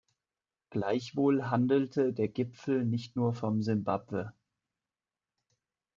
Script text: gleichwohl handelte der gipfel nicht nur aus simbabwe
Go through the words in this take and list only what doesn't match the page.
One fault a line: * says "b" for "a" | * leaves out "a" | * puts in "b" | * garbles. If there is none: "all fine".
* says "von" for "aus"